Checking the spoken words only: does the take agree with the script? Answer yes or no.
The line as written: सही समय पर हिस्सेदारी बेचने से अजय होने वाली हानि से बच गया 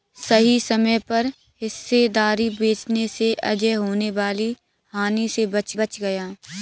no